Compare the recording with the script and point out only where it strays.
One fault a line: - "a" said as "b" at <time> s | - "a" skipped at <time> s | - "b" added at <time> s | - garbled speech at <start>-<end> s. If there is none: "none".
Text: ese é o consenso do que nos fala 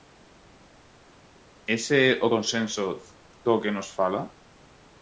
none